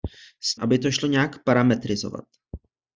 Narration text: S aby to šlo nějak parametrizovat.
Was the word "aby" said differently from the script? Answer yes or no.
no